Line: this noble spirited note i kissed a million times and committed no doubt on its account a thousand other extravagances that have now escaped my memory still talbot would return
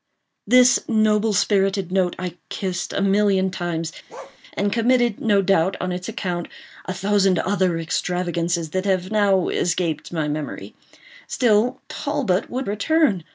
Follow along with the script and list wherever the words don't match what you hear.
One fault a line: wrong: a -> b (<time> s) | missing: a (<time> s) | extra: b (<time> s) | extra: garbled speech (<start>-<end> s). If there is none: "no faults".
no faults